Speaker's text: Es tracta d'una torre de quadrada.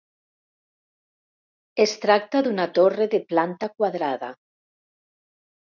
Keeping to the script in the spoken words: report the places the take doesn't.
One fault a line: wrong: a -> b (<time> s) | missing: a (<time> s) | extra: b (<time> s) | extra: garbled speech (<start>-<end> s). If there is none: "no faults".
extra: planta (3.3 s)